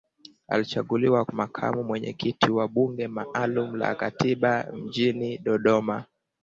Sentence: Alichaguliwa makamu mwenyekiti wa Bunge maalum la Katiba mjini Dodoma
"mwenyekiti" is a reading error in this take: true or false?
false